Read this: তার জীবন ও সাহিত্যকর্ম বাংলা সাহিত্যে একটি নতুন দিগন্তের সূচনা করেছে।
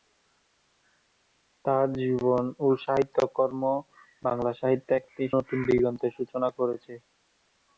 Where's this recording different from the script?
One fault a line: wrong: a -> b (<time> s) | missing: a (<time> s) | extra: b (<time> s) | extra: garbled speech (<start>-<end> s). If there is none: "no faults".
no faults